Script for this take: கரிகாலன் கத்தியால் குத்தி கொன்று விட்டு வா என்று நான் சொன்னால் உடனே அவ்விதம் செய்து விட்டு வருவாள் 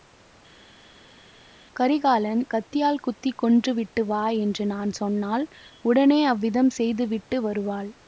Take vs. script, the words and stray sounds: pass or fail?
pass